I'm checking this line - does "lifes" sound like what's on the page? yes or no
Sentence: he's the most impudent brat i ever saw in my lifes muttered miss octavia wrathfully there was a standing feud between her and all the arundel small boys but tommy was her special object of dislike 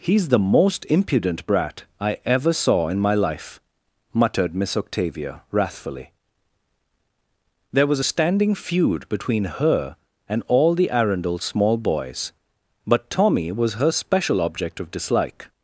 no